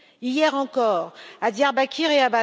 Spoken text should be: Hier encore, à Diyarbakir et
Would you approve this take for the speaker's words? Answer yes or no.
yes